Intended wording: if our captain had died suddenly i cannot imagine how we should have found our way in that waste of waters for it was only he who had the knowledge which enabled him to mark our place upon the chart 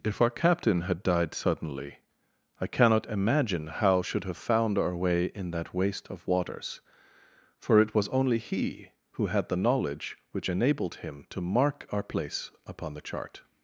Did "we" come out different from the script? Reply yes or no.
yes